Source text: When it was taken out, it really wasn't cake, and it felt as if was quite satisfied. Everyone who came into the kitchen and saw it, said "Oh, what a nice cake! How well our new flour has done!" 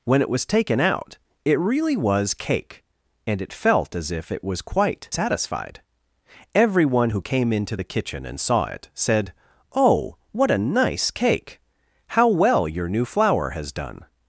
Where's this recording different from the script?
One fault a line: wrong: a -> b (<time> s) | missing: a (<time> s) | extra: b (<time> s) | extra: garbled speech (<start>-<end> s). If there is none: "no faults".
wrong: wasn't -> was (1.9 s)
extra: it (4.3 s)
wrong: our -> your (12.7 s)